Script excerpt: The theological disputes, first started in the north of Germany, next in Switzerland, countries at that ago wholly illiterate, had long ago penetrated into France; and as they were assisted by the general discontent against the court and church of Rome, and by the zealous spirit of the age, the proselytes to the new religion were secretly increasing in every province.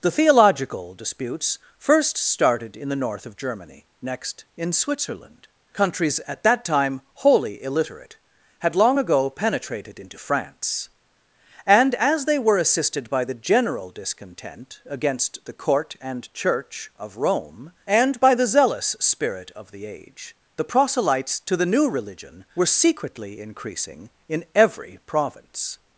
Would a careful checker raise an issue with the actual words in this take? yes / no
yes